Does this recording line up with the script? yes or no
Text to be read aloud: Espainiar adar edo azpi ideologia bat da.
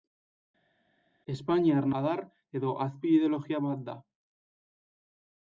yes